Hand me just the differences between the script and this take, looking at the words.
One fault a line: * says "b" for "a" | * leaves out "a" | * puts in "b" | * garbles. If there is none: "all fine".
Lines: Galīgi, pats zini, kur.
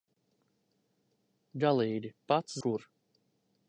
* leaves out "zini"